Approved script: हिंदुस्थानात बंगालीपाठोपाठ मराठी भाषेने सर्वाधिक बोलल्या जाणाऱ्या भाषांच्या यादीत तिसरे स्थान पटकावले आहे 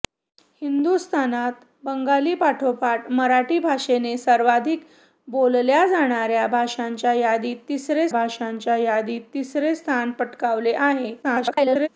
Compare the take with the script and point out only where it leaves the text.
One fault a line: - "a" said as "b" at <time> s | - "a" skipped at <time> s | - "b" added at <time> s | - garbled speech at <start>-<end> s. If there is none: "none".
- "भाषांच्या यादीत तिसरे" added at 8.1 s
- garbled speech at 11.2-11.9 s